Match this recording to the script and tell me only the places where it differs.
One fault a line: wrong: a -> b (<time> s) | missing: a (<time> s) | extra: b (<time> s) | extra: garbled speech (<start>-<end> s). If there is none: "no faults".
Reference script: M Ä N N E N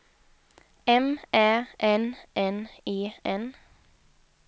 no faults